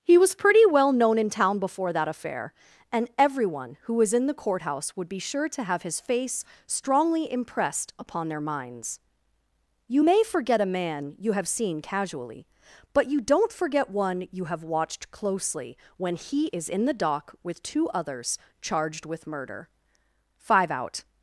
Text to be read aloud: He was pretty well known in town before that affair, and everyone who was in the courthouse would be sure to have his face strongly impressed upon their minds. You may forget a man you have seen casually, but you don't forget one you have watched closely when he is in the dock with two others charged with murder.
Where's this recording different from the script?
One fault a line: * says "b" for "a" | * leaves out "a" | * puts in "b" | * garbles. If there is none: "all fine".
* puts in "Five out"